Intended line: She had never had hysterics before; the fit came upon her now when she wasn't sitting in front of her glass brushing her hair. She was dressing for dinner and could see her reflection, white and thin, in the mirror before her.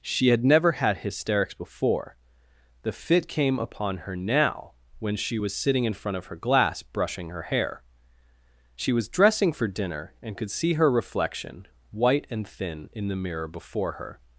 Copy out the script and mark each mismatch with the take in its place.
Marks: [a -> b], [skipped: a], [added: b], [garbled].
She had never had hysterics before; the fit came upon her now when she [wasn't -> was] sitting in front of her glass brushing her hair. She was dressing for dinner and could see her reflection, white and thin, in the mirror before her.